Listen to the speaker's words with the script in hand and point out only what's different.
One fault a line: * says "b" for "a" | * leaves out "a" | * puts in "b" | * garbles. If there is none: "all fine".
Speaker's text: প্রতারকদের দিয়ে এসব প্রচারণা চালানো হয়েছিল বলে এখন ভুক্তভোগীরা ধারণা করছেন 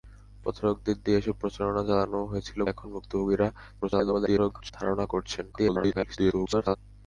* leaves out "বলে"
* garbles
* garbles